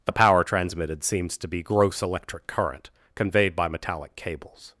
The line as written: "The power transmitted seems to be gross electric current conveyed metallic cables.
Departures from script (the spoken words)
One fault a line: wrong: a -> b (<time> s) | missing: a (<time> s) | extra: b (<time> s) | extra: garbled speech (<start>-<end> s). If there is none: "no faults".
extra: by (3.5 s)